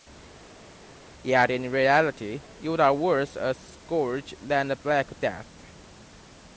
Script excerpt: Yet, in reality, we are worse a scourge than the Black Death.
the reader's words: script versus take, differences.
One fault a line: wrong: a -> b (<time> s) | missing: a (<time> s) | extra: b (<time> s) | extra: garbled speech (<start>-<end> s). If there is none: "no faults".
wrong: we -> you (2.6 s)